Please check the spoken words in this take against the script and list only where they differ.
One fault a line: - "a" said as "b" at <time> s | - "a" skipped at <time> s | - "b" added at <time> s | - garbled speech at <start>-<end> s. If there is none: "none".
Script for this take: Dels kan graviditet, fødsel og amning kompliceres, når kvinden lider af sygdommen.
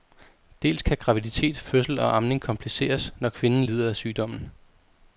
none